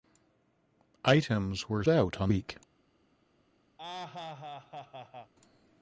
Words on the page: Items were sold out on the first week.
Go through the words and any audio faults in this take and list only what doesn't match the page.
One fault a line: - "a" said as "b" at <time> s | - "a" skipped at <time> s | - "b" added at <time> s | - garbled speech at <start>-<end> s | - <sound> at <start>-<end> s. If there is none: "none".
- "sold" skipped at 1.8 s
- "the first" skipped at 2.3 s
- laugh at 3.8-5.3 s